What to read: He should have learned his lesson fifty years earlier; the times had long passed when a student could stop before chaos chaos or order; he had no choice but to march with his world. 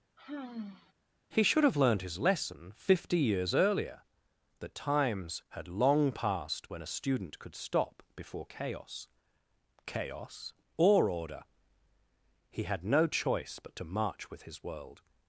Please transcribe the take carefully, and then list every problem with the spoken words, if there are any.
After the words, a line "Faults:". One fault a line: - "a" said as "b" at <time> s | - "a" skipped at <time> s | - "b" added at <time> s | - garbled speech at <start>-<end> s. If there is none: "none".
He should have learned his lesson fifty years earlier; the times had long passed when a student could stop before chaos chaos or order; he had no choice but to march with his world.
Faults:
none